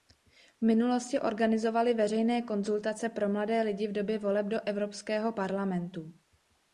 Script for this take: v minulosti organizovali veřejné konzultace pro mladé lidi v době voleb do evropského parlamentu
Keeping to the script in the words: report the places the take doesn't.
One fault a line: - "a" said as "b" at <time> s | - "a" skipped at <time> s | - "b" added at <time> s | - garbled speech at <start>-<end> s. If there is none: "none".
none